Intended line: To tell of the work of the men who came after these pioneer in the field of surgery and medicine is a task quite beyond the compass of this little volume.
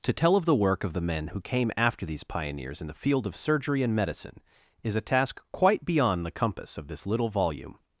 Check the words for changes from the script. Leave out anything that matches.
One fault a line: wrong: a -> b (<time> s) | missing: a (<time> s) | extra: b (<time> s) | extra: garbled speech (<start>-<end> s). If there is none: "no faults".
wrong: pioneer -> pioneers (2.2 s)